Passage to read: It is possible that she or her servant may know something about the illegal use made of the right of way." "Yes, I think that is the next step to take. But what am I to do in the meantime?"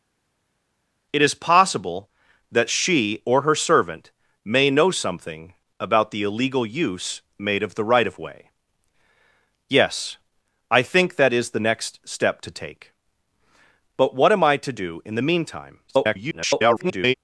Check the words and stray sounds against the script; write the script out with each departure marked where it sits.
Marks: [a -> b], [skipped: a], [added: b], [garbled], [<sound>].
It is possible that she or her servant may know something about the illegal use made of the right of way." "Yes, I think that is the next step to take. But what am I to do in the meantime?" [garbled]